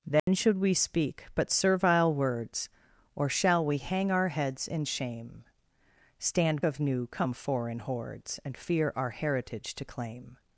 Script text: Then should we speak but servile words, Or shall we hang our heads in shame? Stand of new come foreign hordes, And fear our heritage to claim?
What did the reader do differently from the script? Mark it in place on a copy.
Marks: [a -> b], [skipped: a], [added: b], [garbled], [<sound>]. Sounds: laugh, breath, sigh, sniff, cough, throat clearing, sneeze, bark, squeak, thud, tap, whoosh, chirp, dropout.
Then [dropout] should we speak but servile words, Or shall we hang our heads in shame? Stand of new come foreign hordes, And fear our heritage to claim?